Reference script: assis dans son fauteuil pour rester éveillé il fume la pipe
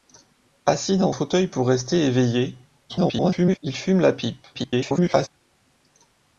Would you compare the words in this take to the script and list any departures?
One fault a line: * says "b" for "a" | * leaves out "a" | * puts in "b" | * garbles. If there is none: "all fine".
* leaves out "son"
* garbles
* garbles